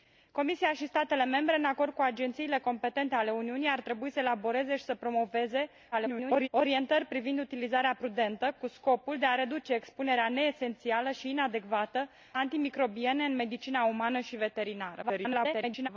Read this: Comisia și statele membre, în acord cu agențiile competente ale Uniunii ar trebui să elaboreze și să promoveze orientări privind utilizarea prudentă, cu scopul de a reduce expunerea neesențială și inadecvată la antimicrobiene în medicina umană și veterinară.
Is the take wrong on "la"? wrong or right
wrong